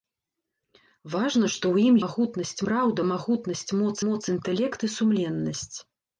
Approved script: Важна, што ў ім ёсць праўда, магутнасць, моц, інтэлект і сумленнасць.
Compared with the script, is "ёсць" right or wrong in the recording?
wrong